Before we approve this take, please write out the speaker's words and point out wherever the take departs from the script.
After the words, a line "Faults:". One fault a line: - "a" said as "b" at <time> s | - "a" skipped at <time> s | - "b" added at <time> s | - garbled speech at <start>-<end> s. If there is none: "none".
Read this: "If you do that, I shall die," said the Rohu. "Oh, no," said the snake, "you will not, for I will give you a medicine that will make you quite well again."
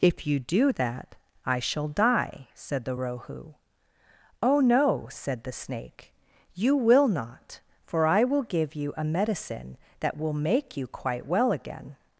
"If you do that, I shall die," said the Rohu. "Oh, no," said the snake, "you will not, for I will give you a medicine that will make you quite well again."
Faults:
none